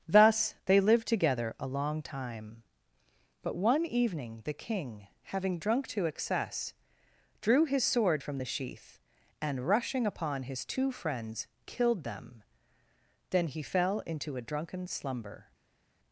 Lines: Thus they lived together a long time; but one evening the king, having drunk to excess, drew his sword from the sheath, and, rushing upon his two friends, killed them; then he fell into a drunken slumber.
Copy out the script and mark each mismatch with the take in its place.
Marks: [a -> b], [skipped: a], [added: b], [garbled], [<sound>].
Thus they lived together a long time; but one evening the king, having drunk to excess, drew his sword from the sheath, and, rushing upon his two friends, killed them; then he fell into a drunken slumber.